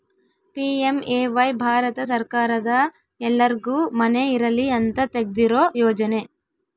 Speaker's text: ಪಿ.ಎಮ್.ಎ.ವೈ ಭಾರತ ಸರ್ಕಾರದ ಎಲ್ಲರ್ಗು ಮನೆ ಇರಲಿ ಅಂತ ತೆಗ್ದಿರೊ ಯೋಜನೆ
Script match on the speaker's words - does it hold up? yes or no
yes